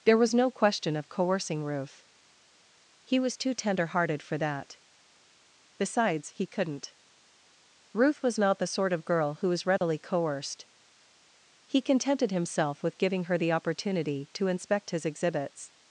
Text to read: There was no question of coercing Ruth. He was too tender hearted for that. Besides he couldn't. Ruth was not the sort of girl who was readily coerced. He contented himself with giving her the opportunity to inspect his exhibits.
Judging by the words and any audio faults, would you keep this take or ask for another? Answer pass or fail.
fail